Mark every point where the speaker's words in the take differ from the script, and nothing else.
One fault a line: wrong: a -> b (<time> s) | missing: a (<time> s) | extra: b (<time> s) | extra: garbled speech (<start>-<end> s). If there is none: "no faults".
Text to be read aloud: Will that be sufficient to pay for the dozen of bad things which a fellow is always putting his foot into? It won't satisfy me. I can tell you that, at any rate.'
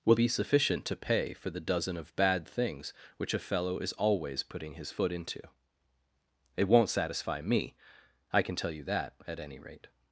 missing: that (0.1 s)